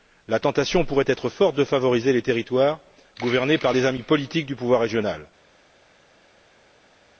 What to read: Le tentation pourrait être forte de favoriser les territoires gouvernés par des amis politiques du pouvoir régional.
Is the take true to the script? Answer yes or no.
no